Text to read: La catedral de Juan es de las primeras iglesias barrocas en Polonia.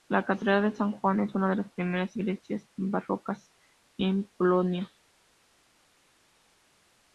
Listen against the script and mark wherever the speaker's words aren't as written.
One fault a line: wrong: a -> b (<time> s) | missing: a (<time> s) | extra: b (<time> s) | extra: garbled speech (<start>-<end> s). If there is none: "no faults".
extra: San (0.7 s)
extra: una (1.3 s)